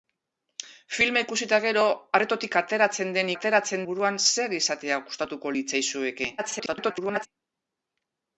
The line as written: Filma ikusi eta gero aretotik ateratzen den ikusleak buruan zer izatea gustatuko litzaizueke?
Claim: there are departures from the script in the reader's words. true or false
true